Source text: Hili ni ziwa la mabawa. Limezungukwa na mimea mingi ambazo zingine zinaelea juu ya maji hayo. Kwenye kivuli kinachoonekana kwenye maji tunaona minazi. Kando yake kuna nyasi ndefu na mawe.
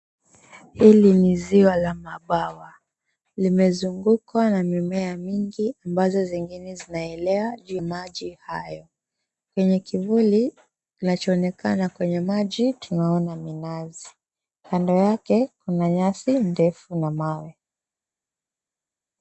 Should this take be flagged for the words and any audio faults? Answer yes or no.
yes